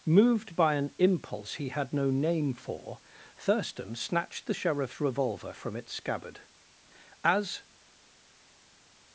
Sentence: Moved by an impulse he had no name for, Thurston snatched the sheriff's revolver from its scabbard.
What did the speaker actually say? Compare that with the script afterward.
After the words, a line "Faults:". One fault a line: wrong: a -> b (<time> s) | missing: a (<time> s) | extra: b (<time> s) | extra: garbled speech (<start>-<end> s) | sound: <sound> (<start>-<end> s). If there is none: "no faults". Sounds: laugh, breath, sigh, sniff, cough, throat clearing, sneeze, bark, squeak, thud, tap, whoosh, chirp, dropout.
Moved by an impulse he had no name for, Thurston snatched the sheriff's revolver from its scabbard. As
Faults:
extra: As (7.2 s)